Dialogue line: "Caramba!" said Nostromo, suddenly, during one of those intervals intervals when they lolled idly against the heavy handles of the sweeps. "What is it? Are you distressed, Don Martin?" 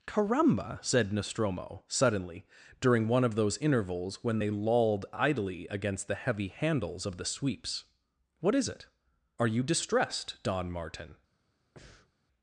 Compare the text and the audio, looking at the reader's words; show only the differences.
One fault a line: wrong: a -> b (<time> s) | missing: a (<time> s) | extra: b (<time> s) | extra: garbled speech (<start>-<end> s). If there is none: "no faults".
missing: intervals (4.2 s)